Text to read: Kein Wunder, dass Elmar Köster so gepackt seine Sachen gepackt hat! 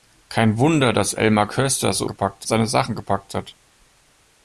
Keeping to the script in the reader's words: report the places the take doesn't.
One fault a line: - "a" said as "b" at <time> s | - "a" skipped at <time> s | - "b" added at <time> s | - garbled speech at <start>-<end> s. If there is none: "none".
none